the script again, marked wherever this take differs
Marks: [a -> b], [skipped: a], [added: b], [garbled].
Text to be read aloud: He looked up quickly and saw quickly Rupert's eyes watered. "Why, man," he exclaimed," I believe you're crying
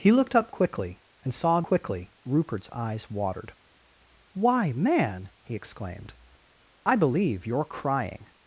He looked up quickly and saw quickly Rupert's eyes watered. "Why, man," he exclaimed," I believe you're crying